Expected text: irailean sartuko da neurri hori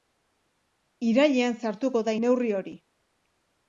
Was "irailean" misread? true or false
false